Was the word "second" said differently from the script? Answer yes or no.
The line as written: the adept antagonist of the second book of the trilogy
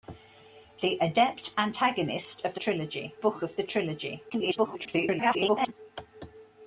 yes